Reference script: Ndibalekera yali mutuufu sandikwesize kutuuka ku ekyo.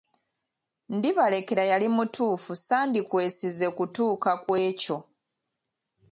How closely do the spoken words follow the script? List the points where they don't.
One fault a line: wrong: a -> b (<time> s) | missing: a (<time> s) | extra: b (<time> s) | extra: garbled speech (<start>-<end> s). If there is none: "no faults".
no faults